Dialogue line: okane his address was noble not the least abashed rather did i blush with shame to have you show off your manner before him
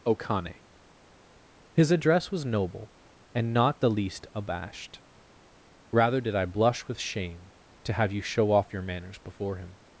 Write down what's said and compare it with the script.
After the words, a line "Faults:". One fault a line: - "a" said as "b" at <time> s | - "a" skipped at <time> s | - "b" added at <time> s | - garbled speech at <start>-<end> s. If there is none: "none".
okane his address was noble and not the least abashed rather did i blush with shame to have you show off your manners before him
Faults:
- "and" added at 3.4 s
- "manner" said as "manners" at 8.8 s